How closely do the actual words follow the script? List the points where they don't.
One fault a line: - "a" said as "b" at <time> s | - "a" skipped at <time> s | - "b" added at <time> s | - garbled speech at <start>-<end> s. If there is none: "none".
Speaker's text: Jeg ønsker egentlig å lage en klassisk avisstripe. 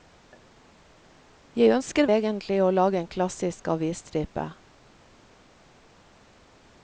none